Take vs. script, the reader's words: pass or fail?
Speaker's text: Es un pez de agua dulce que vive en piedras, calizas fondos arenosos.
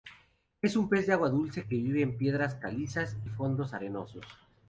pass